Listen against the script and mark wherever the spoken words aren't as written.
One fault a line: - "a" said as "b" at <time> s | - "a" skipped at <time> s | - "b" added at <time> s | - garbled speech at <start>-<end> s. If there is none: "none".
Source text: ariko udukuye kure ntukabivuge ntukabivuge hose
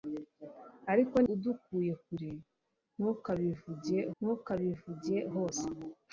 none